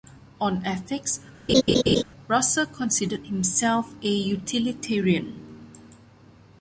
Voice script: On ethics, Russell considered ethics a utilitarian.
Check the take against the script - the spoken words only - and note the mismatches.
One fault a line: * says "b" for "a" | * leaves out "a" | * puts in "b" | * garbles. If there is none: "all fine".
* says "himself" for "ethics"